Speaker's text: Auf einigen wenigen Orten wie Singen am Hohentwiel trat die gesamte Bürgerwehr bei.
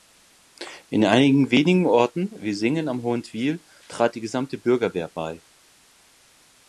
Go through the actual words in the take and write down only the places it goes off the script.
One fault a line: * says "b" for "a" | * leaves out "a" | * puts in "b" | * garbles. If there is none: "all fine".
* says "In" for "Auf"